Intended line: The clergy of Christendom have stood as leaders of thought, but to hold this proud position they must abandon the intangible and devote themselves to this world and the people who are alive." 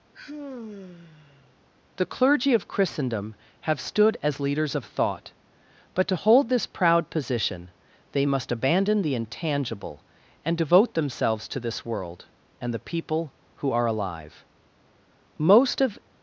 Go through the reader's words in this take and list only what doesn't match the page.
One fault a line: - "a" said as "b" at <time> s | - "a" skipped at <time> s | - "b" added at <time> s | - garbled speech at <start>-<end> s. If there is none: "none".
- "Most of" added at 15.4 s